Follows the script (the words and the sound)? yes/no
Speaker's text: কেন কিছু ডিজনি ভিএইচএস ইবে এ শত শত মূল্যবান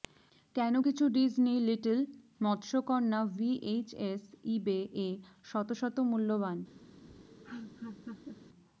no